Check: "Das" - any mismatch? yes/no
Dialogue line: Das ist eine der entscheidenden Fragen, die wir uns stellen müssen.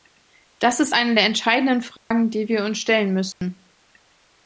no